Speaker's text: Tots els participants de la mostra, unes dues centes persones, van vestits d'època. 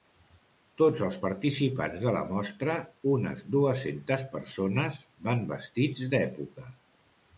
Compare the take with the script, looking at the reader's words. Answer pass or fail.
pass